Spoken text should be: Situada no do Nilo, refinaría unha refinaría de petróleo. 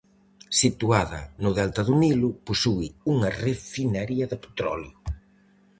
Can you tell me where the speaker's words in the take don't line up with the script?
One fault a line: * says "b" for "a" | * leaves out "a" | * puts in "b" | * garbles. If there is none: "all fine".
* puts in "delta"
* says "posúe" for "refinaría"